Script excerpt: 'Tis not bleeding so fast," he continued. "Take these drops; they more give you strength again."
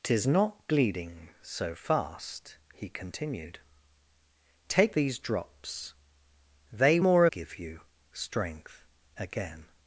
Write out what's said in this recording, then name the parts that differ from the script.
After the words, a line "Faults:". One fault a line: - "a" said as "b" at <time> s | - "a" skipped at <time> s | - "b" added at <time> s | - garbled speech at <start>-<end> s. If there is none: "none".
'Tis not bleeding so fast," he continued. "Take these drops; they more give you strength again."
Faults:
none